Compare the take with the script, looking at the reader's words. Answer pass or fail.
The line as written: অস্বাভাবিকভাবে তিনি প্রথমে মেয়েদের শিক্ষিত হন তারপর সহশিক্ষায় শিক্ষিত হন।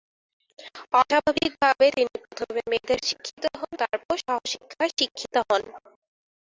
pass